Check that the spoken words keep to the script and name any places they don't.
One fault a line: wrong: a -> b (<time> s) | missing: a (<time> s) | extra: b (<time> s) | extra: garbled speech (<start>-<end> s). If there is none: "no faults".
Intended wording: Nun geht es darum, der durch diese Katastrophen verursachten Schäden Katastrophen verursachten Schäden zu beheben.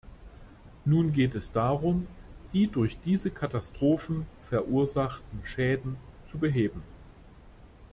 wrong: der -> die (2.5 s)
missing: Katastrophen verursachten Schäden (6.0 s)